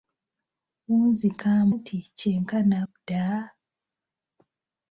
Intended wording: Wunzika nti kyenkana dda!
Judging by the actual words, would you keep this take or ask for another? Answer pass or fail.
pass